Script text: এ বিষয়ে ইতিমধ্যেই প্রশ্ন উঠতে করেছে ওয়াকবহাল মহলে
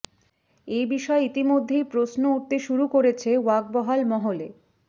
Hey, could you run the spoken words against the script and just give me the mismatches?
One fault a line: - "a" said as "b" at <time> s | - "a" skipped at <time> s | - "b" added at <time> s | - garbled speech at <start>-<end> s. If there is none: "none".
- "শুরু" added at 2.6 s